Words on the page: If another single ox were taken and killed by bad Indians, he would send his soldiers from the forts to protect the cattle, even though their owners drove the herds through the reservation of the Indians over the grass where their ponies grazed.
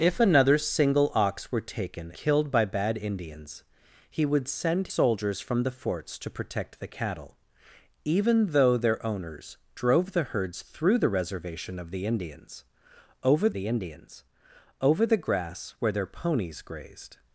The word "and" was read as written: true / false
false